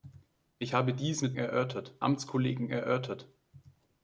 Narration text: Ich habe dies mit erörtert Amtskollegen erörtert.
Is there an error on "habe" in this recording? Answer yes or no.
no